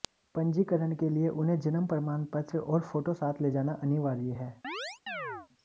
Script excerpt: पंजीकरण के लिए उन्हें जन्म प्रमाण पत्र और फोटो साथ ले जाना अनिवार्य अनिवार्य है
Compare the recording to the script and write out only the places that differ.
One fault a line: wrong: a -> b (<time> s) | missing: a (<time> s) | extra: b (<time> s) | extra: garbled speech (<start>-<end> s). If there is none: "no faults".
missing: अनिवार्य (4.3 s)